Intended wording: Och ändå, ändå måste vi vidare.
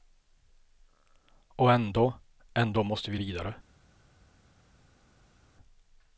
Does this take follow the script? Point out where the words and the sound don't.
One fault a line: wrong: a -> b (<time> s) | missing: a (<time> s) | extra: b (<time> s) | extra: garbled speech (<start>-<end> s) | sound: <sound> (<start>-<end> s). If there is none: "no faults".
no faults